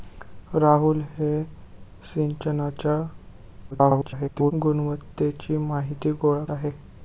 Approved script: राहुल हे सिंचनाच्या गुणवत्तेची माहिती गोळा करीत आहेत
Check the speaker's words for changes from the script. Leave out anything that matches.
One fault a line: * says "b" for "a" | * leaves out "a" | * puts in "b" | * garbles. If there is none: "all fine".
* garbles
* leaves out "करीत"